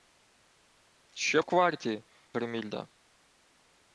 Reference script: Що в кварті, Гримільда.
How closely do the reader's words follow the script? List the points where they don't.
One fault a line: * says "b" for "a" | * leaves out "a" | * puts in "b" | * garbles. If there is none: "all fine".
all fine